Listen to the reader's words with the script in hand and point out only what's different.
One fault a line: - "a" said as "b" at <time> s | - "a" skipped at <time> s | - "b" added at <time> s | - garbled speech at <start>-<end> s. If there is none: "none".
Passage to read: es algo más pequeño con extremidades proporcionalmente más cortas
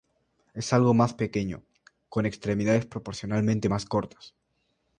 none